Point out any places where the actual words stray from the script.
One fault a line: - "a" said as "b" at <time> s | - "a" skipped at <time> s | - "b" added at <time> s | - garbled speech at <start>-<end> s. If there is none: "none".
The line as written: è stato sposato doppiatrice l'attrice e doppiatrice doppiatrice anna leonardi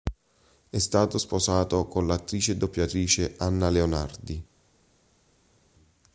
- "doppiatrice" said as "con" at 1.9 s
- "doppiatrice" skipped at 3.3 s